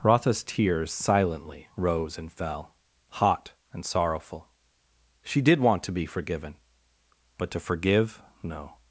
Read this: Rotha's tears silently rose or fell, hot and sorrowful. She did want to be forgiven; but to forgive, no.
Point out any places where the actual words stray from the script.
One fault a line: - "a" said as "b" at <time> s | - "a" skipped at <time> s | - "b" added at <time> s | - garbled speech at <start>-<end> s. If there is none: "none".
- "or" said as "and" at 2.2 s